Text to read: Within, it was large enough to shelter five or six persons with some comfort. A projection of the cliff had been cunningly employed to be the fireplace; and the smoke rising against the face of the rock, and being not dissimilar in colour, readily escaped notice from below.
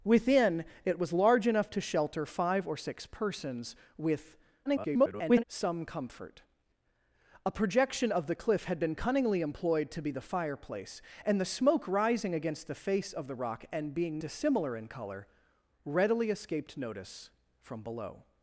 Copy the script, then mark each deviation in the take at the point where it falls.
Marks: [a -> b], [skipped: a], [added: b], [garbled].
Within, it was large enough to shelter five or six persons with [garbled] some comfort. A projection of the cliff had been cunningly employed to be the fireplace; and the smoke rising against the face of the rock, and being [skipped: not] dissimilar in colour, readily escaped notice from below.